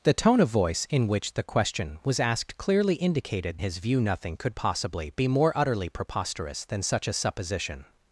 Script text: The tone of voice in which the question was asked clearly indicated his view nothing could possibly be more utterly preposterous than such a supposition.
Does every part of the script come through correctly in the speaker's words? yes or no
yes